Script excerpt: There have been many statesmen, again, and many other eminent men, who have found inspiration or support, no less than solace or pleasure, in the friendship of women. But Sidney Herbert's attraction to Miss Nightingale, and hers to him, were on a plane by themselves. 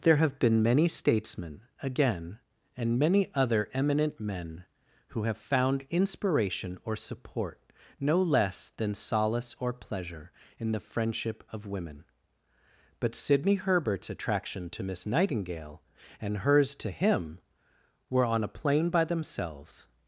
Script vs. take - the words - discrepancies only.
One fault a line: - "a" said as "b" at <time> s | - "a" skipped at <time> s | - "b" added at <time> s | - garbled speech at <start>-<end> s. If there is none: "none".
none